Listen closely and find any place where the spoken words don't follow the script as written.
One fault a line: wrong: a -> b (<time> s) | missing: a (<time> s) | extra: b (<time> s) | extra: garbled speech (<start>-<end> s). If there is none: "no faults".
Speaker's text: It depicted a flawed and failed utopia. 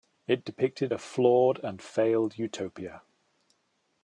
no faults